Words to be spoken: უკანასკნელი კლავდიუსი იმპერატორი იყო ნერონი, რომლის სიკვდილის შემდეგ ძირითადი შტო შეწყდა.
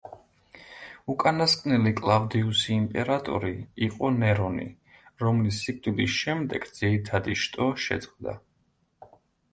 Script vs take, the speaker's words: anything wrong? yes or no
no